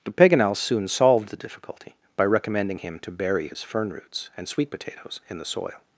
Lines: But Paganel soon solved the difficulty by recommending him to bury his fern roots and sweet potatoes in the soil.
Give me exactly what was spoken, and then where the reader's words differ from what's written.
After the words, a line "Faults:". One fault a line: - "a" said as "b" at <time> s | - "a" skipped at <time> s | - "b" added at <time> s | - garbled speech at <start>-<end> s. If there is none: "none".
But Paganel soon solved the difficulty by recommending him to bury his fern roots and sweet potatoes in the soil.
Faults:
none